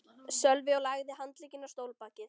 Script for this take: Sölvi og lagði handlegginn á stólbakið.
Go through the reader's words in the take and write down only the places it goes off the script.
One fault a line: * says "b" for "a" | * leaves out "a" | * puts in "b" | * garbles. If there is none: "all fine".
all fine